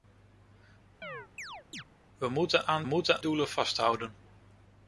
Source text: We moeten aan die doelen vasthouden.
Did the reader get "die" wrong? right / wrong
wrong